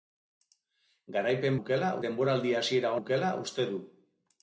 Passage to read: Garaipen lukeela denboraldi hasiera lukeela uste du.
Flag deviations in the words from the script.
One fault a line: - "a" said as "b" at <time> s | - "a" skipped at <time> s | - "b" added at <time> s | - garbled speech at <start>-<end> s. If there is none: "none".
none